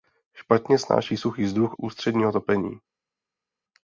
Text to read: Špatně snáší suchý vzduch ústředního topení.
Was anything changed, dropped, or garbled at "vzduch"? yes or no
no